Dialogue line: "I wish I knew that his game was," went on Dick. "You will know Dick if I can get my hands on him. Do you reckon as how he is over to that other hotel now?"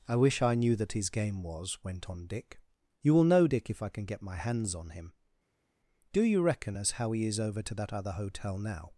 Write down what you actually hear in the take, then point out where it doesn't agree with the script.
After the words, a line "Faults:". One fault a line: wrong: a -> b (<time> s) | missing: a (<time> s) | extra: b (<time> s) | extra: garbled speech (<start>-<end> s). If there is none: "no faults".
"I wish I knew that his game was," went on Dick. "You will know Dick if I can get my hands on him. Do you reckon as how he is over to that other hotel now?"
Faults:
no faults